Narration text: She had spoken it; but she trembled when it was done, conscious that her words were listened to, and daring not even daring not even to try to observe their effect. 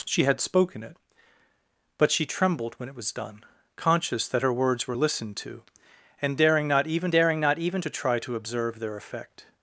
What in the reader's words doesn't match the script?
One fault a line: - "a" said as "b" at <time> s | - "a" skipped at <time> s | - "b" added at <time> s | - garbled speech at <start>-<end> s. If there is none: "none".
none